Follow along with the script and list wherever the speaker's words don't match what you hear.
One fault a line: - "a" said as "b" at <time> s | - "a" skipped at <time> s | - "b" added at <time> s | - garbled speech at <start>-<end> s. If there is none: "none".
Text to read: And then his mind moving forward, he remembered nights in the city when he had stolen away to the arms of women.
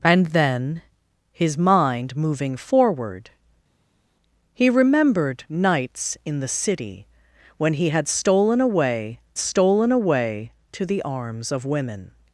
- "stolen away" added at 9.4 s